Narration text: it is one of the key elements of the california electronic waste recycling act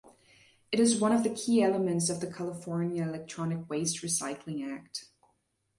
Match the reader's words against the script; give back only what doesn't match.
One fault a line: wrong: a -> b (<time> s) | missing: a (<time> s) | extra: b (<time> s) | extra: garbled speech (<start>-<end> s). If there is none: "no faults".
no faults